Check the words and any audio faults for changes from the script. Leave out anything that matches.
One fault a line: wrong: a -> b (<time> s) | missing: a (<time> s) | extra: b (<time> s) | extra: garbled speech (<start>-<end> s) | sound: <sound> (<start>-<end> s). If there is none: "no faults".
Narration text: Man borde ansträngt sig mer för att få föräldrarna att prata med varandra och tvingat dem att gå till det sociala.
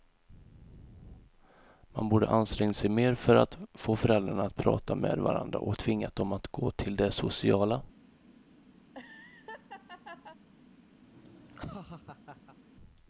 sound: laugh (8.8-10.4 s)
sound: laugh (11.0-12.6 s)